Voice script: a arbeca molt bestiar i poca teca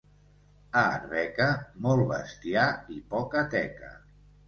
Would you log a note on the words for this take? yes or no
no